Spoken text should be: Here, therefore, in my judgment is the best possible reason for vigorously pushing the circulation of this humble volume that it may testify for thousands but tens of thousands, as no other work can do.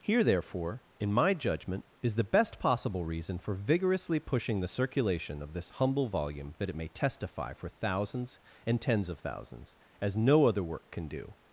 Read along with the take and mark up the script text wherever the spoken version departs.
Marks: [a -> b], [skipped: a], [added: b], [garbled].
Here, therefore, in my judgment is the best possible reason for vigorously pushing the circulation of this humble volume that it may testify for thousands [but -> and] tens of thousands, as no other work can do.